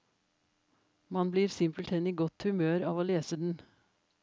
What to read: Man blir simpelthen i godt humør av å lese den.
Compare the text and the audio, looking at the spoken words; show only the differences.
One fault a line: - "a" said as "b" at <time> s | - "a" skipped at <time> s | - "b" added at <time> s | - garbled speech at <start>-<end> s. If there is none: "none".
none